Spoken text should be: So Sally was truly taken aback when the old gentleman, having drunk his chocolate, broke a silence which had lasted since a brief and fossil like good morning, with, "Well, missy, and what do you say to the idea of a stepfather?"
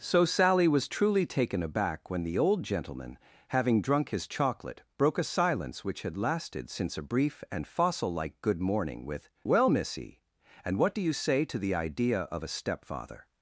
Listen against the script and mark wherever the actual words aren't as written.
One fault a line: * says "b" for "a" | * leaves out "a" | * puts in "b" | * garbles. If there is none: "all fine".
all fine